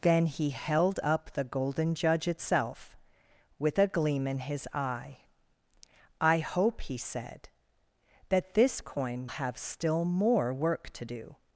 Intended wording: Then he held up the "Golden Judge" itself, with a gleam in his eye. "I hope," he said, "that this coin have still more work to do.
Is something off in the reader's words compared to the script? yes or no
no